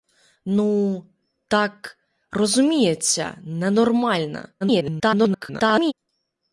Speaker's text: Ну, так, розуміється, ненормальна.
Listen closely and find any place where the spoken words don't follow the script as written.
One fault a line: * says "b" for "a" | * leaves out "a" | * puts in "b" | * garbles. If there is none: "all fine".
* garbles